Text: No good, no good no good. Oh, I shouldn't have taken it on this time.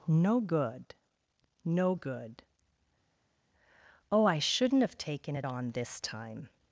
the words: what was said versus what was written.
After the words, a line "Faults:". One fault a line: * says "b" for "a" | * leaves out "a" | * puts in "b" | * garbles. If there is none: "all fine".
No good, no good. Oh, I shouldn't have taken it on this time.
Faults:
* leaves out "no good"